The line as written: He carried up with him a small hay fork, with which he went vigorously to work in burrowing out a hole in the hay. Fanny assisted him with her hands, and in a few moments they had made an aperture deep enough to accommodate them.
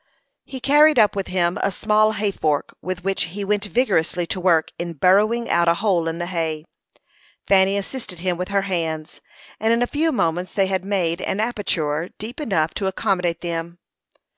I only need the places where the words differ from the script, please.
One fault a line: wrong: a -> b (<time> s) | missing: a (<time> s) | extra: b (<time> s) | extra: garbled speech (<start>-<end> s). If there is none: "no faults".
no faults